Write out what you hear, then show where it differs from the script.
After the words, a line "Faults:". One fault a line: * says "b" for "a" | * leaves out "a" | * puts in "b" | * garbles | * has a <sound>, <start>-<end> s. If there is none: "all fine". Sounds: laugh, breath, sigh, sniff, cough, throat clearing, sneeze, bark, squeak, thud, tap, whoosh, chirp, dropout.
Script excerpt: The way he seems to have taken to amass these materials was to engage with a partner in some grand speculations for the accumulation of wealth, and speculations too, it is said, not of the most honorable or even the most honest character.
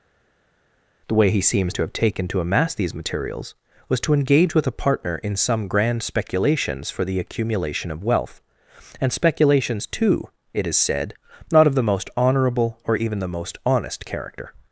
The way he seems to have taken to amass these materials was to engage with a partner in some grand speculations for the accumulation of wealth, and speculations too, it is said, not of the most honorable or even the most honest character.
Faults:
all fine